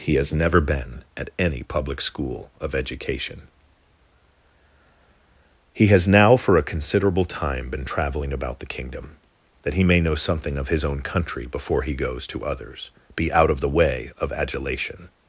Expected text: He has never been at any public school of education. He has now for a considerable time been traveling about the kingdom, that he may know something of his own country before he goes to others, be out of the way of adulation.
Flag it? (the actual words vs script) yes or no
no